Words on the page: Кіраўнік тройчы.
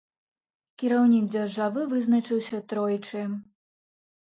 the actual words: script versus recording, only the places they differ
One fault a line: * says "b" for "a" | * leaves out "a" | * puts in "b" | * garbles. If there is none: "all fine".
* puts in "дзяржавы вызначыўся"